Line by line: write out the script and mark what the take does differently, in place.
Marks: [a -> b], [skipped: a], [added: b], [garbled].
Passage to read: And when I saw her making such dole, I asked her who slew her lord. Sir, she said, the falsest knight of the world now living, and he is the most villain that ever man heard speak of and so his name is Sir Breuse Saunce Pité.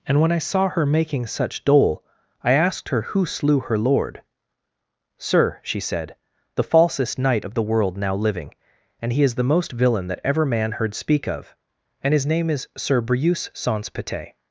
And when I saw her making such dole, I asked her who slew her lord. Sir, she said, the falsest knight of the world now living, and he is the most villain that ever man heard speak of and [skipped: so] his name is Sir Breuse Saunce Pité.